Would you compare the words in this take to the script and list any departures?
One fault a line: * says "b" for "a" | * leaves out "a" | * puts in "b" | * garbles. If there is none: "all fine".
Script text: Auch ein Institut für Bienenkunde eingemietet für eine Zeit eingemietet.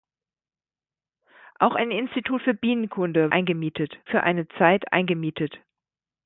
all fine